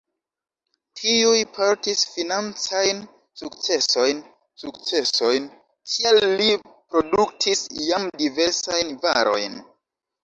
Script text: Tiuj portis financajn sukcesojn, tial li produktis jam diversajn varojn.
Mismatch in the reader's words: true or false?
true